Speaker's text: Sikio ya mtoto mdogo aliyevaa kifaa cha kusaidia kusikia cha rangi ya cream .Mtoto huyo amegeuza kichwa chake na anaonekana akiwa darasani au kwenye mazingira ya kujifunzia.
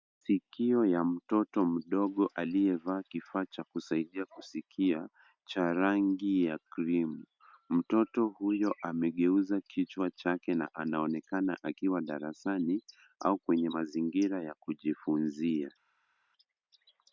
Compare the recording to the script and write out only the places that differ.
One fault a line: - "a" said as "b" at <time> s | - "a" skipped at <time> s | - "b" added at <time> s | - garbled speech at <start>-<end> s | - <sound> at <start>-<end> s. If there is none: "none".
none